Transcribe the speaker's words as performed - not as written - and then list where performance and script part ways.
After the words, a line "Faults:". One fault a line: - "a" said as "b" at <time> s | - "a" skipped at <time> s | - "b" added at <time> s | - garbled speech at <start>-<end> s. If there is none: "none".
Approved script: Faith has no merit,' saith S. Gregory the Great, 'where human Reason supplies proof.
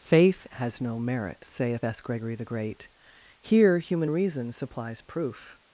Faith has no merit,' saith S. Gregory the Great, 'here human Reason supplies proof.
Faults:
- "where" said as "here" at 3.4 s